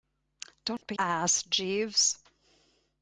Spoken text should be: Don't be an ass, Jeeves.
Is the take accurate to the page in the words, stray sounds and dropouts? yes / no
no